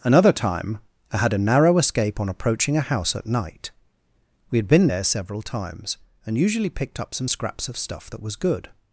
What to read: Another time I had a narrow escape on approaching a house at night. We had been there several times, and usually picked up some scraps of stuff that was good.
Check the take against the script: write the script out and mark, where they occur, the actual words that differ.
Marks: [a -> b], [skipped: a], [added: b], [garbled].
Another time I had a narrow escape on approaching a house at night. We had been there several times, and usually picked up some scraps of stuff that was good.